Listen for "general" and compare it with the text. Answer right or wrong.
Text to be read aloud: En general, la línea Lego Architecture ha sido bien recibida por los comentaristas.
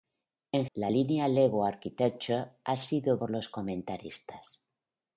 wrong